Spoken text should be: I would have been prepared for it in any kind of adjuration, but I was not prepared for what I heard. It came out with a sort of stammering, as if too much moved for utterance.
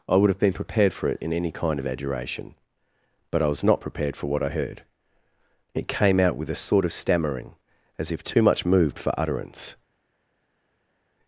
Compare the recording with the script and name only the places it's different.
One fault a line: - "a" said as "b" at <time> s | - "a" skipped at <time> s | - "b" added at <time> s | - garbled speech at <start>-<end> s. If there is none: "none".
none